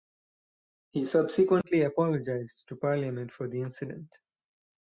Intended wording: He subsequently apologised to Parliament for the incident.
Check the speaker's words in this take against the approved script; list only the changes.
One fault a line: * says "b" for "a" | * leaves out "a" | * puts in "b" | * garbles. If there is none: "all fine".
all fine